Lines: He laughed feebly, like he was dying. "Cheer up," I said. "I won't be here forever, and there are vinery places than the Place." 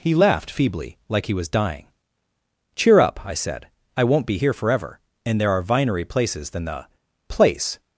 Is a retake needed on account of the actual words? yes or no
no